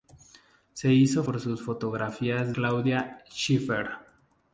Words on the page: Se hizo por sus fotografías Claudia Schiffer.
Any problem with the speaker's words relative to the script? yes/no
no